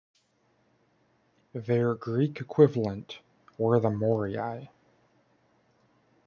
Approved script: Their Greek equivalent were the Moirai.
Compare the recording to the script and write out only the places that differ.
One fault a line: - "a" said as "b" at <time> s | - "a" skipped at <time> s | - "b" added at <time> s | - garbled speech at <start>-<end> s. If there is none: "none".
none